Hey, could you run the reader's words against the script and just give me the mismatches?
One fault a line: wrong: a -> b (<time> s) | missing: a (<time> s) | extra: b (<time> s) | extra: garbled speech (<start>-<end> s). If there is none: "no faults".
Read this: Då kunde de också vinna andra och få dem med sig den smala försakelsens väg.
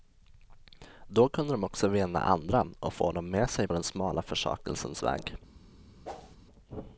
no faults